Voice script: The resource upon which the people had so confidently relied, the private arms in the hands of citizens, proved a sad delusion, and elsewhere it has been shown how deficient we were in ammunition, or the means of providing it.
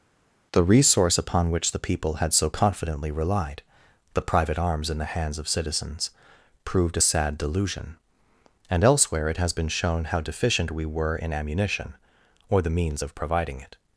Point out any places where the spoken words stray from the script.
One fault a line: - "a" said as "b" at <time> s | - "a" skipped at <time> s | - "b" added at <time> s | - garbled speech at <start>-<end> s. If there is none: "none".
none